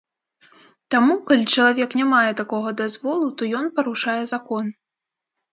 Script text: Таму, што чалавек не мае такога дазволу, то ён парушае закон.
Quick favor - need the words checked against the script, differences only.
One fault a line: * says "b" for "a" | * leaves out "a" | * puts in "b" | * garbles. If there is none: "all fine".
* says "калі" for "што"